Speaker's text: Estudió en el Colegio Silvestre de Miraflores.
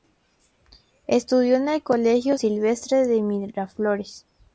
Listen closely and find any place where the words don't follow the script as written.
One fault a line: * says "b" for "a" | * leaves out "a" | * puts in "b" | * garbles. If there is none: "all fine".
all fine